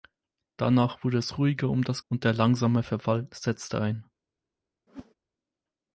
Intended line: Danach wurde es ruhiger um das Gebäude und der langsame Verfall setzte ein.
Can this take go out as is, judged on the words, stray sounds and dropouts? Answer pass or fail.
fail